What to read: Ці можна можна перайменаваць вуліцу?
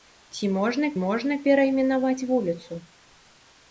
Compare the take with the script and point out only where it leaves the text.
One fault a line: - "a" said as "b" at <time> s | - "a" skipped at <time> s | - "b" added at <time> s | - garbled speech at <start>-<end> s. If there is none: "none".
none